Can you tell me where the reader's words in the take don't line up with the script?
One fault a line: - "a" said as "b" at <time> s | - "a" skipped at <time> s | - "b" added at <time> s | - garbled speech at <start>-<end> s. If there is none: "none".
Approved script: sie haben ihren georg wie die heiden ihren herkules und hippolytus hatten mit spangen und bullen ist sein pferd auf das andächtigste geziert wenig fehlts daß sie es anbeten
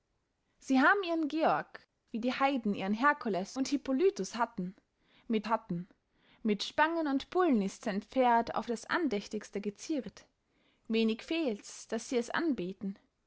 - "hatten mit" added at 5.5 s